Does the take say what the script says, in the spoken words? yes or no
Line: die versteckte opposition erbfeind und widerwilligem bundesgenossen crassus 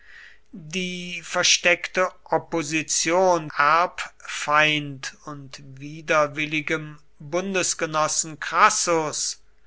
yes